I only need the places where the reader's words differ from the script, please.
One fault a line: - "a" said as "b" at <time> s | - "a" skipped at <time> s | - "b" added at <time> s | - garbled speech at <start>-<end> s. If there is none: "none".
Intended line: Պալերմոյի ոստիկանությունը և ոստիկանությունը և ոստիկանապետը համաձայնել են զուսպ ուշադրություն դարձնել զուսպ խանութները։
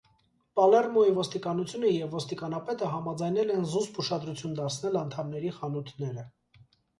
- "ոստիկանությունը և" skipped at 2.1 s
- "զուսպ" said as "անդամների" at 5.0 s